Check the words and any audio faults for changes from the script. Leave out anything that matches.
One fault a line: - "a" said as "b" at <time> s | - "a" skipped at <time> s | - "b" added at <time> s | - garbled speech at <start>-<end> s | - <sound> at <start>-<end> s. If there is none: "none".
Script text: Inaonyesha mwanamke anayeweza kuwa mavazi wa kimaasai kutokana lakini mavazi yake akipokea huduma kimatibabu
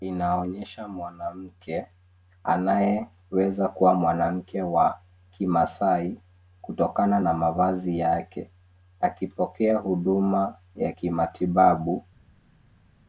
- "mavazi" said as "mwanamke" at 3.9 s
- "lakini" said as "na" at 7.2 s
- "ya" added at 10.7 s